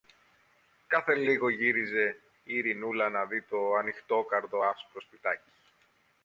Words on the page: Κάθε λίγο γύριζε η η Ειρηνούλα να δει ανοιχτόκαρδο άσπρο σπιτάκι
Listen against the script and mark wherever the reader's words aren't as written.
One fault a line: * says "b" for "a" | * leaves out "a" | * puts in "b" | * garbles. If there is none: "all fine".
* leaves out "η"
* puts in "το"